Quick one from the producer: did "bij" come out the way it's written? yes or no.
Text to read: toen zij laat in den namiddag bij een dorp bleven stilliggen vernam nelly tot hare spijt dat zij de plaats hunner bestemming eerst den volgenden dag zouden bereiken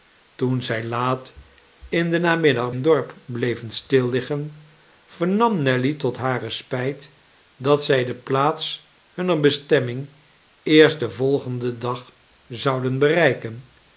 no